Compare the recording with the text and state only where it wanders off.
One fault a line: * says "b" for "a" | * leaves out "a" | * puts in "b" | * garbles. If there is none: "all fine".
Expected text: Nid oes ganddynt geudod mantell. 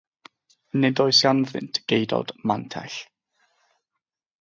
all fine